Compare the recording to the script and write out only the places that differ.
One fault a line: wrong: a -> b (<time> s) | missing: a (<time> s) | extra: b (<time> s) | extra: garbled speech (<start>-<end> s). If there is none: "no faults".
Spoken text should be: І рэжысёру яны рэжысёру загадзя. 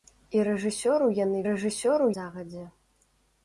no faults